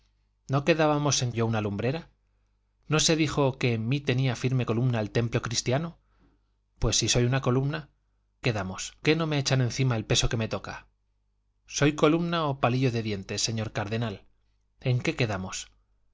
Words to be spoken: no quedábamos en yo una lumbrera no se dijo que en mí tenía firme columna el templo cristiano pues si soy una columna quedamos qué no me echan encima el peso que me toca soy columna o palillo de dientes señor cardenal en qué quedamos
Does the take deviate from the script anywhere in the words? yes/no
no